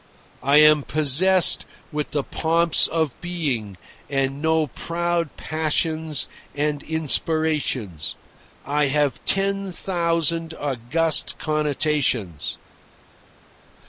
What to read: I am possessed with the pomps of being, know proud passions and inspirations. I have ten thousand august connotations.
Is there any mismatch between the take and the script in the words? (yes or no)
yes